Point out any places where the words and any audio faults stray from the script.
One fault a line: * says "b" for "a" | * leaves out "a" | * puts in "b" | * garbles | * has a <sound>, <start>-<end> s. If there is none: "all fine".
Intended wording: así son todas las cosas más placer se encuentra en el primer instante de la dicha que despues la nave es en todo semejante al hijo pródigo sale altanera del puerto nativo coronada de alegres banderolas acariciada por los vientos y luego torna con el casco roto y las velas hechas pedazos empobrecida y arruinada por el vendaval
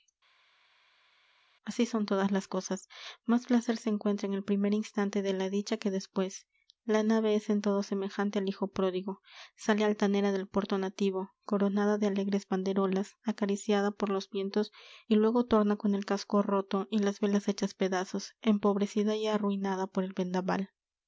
all fine